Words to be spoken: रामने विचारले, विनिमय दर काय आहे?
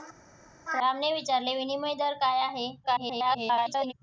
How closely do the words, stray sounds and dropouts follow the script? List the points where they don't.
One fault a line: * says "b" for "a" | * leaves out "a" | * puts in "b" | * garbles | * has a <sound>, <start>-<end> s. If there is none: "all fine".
* garbles